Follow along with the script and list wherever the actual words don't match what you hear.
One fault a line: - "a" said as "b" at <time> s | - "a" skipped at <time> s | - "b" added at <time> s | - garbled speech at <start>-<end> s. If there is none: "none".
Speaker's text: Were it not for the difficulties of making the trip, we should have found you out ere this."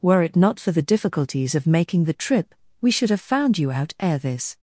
none